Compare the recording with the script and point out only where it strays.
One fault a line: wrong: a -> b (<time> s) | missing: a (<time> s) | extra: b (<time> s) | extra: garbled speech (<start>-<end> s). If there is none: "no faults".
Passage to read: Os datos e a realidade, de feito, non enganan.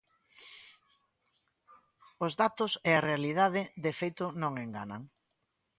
no faults